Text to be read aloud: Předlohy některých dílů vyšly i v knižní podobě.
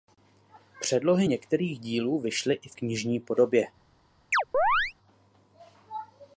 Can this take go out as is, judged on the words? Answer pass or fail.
pass